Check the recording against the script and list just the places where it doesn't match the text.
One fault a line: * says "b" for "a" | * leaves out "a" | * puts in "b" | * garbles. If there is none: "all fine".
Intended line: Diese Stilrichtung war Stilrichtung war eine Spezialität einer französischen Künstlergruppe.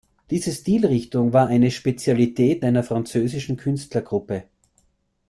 * leaves out "Stilrichtung war"